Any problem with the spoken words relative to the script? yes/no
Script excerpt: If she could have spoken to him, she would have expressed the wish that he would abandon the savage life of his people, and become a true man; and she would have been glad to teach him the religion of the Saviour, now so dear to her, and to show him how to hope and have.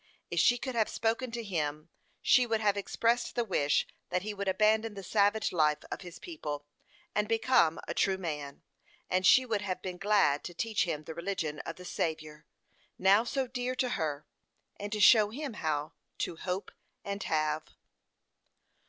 no